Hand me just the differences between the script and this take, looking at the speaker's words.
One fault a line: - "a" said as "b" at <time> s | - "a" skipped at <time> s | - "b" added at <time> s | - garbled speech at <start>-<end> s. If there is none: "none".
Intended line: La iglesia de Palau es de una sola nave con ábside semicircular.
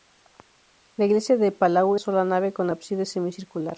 - "es de una" skipped at 1.9 s